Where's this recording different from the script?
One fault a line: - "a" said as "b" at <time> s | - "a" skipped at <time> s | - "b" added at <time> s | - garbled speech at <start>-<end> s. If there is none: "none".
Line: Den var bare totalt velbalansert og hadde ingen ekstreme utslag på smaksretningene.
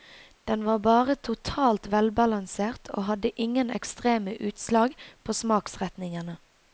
none